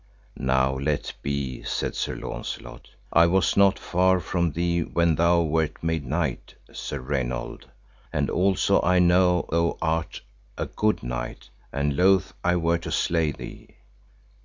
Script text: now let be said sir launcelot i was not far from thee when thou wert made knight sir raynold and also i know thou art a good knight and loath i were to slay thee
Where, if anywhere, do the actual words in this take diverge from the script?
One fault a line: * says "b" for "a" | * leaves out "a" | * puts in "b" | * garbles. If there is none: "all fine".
all fine